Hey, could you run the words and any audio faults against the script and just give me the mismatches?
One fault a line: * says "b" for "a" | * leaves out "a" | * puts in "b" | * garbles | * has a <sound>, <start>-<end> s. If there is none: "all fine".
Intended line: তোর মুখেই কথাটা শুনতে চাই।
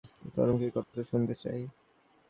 * has a dropout, 0.8-0.9 s